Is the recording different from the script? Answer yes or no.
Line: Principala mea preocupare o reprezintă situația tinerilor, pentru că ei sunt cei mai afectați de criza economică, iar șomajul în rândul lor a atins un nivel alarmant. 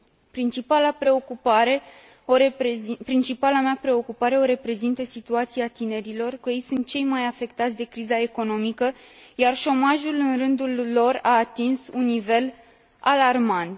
yes